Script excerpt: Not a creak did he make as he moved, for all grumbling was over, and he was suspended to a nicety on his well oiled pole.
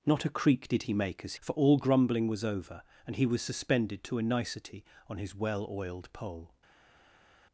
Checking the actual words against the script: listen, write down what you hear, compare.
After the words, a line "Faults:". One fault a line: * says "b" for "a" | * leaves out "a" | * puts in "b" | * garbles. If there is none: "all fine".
Not a creak did he make as for all grumbling was over, and he was suspended to a nicety on his well oiled pole.
Faults:
* leaves out "he moved"